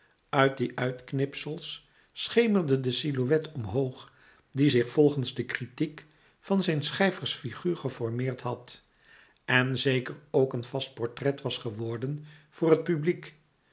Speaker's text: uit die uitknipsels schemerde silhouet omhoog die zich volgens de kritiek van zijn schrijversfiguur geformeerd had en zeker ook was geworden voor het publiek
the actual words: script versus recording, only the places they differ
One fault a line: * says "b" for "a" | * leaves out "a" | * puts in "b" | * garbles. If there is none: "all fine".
* puts in "de"
* puts in "een vast portret"